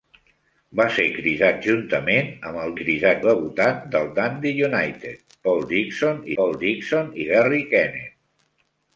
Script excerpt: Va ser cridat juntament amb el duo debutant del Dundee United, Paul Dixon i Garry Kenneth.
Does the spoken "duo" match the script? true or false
false